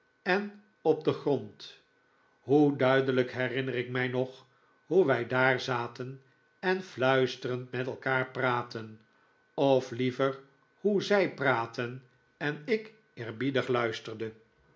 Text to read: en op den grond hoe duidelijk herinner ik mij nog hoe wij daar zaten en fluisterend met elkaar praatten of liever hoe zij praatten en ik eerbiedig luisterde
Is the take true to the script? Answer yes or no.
yes